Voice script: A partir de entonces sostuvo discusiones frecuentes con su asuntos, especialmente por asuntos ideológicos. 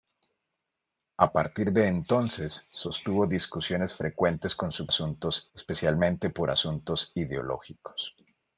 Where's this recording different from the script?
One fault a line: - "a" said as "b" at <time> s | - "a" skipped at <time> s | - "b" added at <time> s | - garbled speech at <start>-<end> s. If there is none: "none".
none